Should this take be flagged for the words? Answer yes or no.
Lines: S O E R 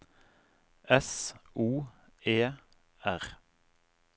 no